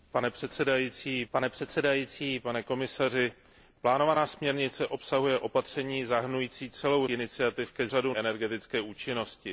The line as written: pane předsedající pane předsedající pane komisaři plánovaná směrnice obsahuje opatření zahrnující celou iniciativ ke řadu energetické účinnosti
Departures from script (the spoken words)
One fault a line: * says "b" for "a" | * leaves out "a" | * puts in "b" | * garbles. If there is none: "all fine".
all fine